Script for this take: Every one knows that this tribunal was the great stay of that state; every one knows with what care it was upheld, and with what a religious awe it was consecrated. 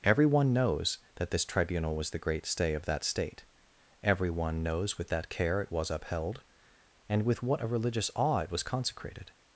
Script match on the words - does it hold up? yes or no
no